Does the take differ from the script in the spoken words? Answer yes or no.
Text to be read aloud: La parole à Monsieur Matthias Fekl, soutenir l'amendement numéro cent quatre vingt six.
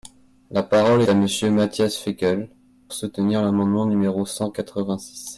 no